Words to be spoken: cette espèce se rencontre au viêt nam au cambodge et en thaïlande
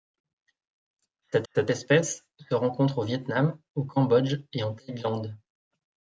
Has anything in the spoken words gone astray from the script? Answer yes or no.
yes